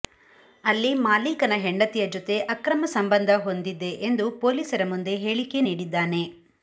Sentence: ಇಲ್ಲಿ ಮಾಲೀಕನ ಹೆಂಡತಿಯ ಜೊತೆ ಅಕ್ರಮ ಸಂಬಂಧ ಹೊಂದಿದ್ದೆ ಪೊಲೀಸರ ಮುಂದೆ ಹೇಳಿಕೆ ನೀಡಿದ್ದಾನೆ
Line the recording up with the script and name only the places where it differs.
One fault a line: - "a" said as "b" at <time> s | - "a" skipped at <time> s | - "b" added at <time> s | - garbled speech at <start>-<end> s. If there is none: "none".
- "ಇಲ್ಲಿ" said as "ಅಲ್ಲಿ" at 0.6 s
- "ಎಂದು" added at 4.1 s